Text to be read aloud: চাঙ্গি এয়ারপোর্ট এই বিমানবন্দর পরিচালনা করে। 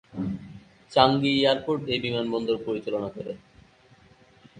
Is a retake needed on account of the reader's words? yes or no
no